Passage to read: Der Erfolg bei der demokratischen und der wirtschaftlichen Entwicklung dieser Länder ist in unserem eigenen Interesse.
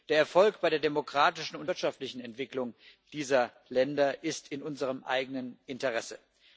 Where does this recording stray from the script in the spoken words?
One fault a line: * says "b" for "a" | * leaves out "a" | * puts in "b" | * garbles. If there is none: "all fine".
* leaves out "der"